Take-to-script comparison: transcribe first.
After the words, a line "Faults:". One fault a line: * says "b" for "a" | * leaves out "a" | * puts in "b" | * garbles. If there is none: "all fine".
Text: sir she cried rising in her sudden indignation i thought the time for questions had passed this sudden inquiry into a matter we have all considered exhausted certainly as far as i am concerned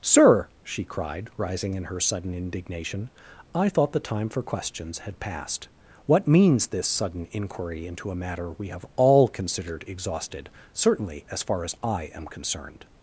sir she cried rising in her sudden indignation i thought the time for questions had passed what means this sudden inquiry into a matter we have all considered exhausted certainly as far as i am concerned
Faults:
* puts in "what means"